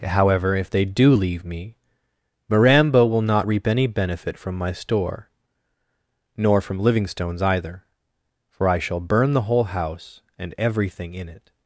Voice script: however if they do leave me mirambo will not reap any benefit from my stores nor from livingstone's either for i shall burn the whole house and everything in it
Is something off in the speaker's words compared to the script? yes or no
yes